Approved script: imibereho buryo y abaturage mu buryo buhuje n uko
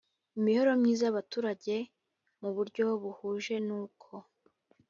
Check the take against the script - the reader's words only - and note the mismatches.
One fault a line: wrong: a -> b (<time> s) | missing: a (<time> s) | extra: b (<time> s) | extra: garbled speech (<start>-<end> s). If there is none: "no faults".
wrong: buryo -> myiza (0.8 s)